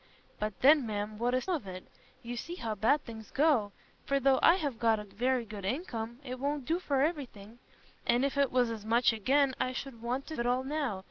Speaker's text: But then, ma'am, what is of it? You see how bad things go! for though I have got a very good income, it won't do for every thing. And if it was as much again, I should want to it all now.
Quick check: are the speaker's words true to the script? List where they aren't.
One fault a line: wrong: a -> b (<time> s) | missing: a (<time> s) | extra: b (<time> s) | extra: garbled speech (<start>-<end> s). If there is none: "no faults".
no faults